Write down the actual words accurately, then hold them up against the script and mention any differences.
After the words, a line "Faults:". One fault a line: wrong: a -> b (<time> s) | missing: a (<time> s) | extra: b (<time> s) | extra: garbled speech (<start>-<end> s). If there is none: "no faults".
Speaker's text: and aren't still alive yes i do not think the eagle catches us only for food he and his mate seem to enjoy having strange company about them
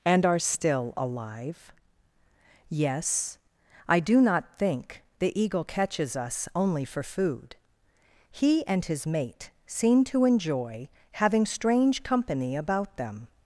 and are still alive yes i do not think the eagle catches us only for food he and his mate seem to enjoy having strange company about them
Faults:
wrong: aren't -> are (0.2 s)